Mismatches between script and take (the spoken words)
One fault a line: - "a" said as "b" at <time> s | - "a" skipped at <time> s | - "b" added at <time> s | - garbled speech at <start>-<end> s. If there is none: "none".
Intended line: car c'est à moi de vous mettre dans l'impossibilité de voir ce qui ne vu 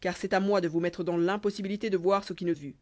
none